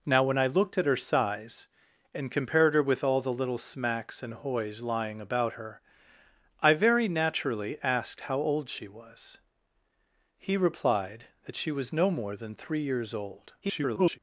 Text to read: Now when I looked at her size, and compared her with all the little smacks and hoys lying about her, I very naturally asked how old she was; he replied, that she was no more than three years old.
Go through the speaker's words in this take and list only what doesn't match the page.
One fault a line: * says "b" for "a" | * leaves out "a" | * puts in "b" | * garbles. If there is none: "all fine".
* garbles